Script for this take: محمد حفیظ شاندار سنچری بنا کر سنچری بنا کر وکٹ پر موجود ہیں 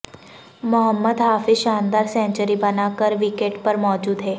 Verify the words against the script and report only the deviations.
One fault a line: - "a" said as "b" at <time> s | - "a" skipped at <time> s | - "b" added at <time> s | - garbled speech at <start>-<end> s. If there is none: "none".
- "سنچری بنا کر" skipped at 3.1 s